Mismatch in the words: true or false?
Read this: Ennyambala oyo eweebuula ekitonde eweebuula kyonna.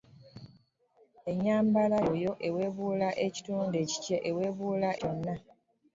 false